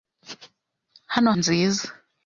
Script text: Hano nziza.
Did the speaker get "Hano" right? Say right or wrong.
right